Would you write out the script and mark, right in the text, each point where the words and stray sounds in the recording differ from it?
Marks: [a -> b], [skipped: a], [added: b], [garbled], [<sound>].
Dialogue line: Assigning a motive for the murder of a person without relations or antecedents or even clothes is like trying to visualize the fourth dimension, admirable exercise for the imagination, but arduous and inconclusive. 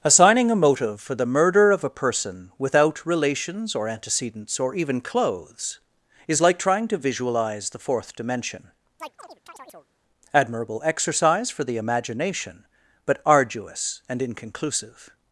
Assigning a motive for the murder of a person without relations or antecedents or even clothes is like trying to visualize the fourth dimension, [chirp] admirable exercise for the imagination, but arduous and inconclusive.